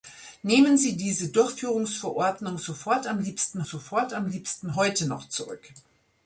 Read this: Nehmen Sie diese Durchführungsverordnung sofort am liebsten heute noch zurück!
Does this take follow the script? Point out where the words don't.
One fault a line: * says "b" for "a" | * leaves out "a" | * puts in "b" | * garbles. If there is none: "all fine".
* puts in "sofort am liebsten"